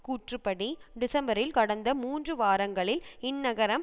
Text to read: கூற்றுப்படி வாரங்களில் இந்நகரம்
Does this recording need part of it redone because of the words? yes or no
yes